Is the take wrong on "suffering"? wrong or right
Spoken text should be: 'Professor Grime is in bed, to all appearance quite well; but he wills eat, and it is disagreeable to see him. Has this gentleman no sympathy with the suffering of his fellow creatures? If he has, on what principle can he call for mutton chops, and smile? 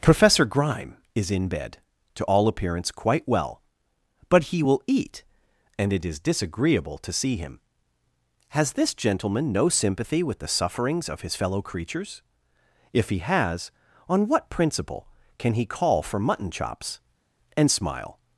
wrong